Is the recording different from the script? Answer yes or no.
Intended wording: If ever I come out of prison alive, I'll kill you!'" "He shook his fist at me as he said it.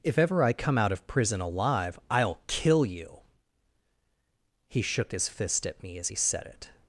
no